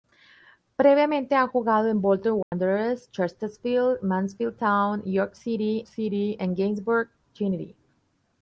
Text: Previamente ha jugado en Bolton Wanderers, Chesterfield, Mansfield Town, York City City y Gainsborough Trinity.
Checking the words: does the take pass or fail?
pass